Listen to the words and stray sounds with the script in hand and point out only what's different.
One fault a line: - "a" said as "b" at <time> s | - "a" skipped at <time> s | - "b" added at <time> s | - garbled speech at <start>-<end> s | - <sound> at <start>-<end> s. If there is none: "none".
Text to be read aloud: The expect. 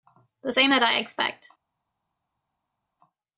- "same that I" added at 0.5 s